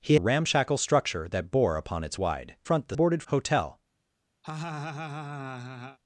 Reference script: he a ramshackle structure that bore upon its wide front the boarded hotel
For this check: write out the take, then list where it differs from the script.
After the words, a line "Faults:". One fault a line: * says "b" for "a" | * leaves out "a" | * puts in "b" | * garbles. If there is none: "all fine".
he a ramshackle structure that bore upon its wide front the boarded hotel
Faults:
all fine